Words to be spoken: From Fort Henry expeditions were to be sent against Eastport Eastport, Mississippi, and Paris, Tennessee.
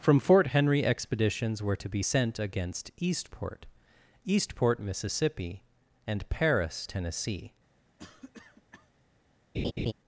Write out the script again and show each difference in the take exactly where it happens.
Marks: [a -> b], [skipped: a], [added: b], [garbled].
From Fort Henry expeditions were to be sent against Eastport Eastport, Mississippi, and Paris, Tennessee.